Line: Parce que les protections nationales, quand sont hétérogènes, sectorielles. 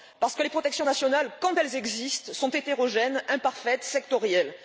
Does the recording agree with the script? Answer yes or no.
no